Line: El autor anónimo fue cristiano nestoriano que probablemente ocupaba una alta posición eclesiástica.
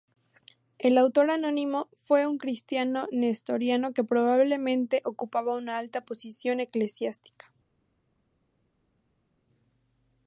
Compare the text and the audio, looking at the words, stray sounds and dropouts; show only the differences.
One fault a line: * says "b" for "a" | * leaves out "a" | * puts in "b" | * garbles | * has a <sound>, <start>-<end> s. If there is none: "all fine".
* puts in "un"